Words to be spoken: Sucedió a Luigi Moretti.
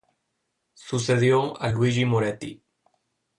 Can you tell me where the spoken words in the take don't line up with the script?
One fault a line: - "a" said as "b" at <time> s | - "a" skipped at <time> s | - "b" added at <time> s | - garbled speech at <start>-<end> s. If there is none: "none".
none